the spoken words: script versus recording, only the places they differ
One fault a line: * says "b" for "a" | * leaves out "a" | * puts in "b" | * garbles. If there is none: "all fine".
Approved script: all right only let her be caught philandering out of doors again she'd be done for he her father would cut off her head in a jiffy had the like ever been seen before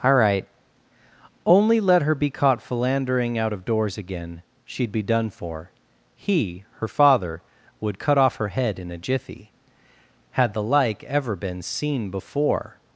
all fine